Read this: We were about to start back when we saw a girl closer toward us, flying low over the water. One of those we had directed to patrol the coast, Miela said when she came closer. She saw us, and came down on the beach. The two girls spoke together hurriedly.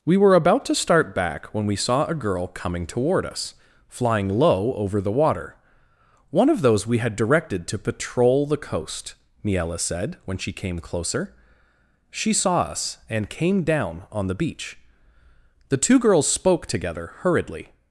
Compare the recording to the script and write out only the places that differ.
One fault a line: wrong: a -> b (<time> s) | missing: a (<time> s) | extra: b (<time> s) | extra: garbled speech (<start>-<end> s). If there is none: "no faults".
wrong: closer -> coming (2.5 s)